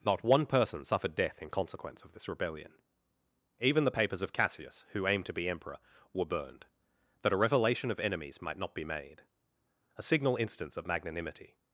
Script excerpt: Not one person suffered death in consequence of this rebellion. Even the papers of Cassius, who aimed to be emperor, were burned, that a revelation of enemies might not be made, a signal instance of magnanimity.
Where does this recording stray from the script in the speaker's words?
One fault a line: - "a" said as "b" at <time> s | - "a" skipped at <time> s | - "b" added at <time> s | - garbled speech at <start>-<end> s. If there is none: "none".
none